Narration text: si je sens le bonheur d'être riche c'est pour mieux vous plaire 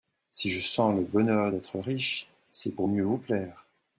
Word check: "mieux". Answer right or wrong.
right